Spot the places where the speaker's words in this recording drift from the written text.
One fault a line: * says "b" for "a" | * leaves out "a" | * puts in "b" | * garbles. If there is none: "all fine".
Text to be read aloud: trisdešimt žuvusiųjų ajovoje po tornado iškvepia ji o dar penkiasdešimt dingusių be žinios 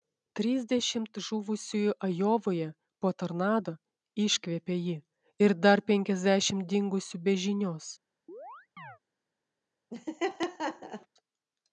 * says "ir" for "o"